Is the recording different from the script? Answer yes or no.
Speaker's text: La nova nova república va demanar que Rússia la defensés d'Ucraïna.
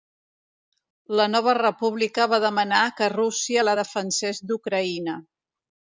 yes